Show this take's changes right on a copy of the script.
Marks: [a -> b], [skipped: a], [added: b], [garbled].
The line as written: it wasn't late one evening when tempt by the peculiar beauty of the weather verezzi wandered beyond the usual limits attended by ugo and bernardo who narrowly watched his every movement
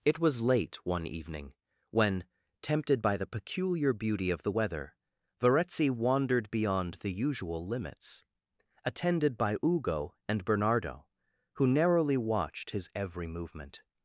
it [wasn't -> was] late one evening when [tempt -> tempted] by the peculiar beauty of the weather verezzi wandered beyond the usual limits attended by ugo and bernardo who narrowly watched his every movement